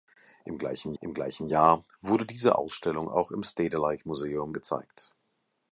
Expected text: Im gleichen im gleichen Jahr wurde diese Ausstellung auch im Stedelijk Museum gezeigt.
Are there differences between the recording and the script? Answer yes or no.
no